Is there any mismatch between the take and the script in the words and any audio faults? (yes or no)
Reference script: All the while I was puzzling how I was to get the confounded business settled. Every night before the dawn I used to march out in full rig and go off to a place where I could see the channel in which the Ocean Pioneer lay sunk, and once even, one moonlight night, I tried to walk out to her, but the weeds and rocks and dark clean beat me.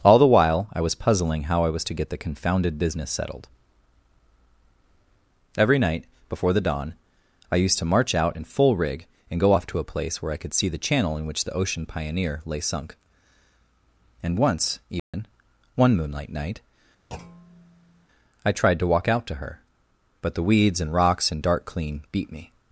yes